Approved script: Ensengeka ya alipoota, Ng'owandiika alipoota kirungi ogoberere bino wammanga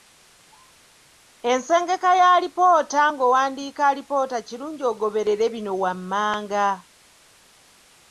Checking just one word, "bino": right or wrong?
right